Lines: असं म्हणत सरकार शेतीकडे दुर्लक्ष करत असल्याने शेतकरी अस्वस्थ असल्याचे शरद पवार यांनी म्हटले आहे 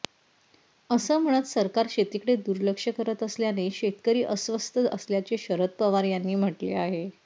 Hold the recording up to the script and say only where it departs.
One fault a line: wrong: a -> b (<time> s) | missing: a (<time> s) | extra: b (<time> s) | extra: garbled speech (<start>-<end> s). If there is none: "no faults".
no faults